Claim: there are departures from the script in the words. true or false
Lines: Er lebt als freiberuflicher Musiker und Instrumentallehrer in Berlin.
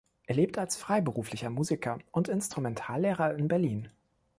false